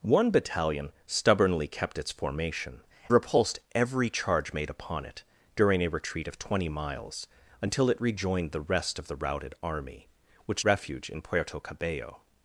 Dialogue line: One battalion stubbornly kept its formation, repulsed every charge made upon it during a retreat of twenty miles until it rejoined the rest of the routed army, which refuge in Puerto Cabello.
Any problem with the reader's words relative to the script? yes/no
no